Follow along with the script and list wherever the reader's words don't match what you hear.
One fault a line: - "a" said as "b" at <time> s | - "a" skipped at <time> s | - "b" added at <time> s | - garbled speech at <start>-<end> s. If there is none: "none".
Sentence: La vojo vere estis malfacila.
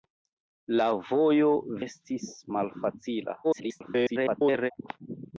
- "vere" skipped at 1.5 s
- garbled speech at 3.4-4.7 s